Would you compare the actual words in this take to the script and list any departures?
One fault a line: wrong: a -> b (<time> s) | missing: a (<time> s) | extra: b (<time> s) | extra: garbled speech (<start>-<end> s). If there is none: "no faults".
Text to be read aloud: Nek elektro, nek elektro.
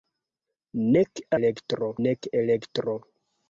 no faults